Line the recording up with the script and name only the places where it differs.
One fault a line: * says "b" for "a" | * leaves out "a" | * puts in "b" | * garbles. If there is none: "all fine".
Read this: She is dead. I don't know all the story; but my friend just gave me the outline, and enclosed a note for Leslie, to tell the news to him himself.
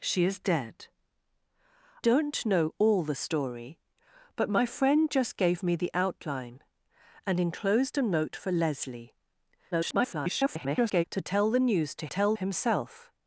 * leaves out "I"
* garbles
* says "tell" for "him"